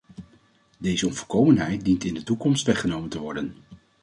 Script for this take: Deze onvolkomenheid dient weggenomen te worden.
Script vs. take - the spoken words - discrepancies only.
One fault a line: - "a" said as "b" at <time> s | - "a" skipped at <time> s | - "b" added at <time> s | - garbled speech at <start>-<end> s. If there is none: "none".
- "in de toekomst" added at 2.0 s